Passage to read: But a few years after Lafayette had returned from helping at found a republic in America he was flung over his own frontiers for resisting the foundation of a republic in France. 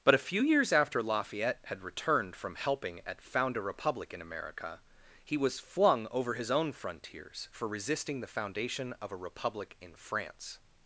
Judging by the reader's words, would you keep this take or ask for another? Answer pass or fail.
pass